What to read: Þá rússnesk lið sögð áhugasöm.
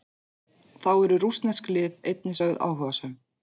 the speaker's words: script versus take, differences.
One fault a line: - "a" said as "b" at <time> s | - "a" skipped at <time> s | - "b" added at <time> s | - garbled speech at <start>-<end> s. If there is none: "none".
- "eru" added at 1.0 s
- "einnig" added at 2.1 s